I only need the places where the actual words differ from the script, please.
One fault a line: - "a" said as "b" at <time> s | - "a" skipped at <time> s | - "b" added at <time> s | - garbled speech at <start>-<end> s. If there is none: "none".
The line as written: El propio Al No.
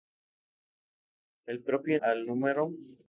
none